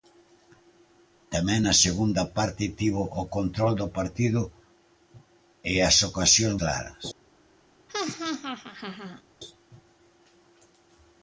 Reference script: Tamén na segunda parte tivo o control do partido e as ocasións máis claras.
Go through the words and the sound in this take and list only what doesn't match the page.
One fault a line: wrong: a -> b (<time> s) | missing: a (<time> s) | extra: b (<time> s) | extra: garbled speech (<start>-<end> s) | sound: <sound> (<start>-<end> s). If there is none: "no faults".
missing: máis (6.6 s)
sound: laugh (7.9-9.2 s)